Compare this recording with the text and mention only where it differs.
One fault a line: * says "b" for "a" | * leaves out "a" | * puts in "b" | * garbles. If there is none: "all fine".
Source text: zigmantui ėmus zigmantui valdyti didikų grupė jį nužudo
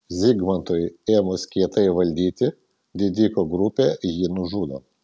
* says "kietai" for "zigmantui"